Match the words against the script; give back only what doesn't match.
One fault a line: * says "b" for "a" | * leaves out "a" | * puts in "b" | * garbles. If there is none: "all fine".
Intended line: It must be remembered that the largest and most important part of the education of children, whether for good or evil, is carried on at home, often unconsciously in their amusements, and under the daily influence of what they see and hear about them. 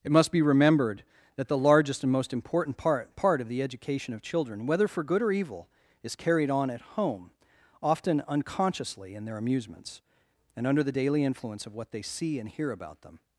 * puts in "part"